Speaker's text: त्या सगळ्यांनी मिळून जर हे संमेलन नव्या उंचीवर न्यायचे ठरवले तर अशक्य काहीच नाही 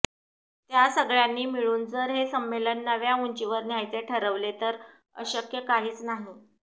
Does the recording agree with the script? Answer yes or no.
yes